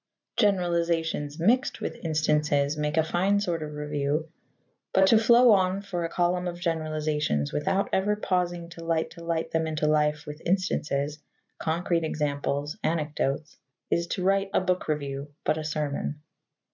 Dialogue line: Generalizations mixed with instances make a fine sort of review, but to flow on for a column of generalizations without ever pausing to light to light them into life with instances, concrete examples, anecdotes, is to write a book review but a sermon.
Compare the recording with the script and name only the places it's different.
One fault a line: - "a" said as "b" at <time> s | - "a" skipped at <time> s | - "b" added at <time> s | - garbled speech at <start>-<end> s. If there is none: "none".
none